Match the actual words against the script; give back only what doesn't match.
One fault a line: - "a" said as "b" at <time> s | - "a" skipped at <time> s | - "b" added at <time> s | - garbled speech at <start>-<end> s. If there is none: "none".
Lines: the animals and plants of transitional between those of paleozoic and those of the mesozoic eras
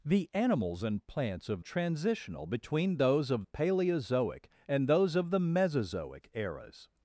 none